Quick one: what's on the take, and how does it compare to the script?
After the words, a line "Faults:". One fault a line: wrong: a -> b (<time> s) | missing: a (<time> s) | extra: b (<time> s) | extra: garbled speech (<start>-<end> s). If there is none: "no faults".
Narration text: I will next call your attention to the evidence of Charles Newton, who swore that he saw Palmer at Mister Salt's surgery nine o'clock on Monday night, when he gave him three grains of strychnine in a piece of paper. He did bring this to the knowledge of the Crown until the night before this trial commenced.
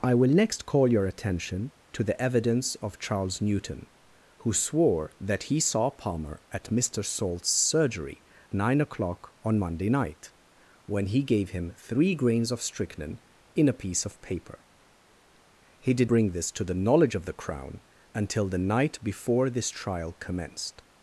I will next call your attention to the evidence of Charles Newton, who swore that he saw Palmer at Mister Salt's surgery nine o'clock on Monday night, when he gave him three grains of strychnine in a piece of paper. He did bring this to the knowledge of the Crown until the night before this trial commenced.
Faults:
no faults